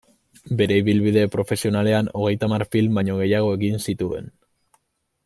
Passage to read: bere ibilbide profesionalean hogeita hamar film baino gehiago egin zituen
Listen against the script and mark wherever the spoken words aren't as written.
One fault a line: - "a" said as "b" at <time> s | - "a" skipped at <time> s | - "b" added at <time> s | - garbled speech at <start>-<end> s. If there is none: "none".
none